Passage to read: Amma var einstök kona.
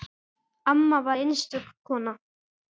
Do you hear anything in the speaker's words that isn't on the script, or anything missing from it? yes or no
no